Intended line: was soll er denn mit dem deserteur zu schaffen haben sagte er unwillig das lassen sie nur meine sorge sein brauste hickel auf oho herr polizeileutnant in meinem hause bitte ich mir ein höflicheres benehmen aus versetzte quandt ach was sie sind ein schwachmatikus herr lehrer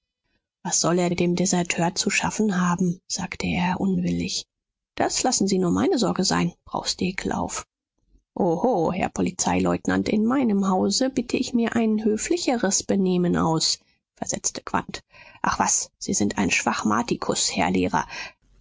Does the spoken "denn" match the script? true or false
false